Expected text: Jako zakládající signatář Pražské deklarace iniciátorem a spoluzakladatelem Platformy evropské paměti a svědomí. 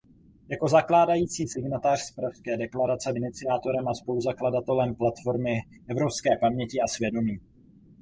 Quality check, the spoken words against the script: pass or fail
pass